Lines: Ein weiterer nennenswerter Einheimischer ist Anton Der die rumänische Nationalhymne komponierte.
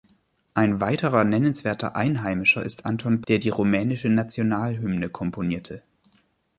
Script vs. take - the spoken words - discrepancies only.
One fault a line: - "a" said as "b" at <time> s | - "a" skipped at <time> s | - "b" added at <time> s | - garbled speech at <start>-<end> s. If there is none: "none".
none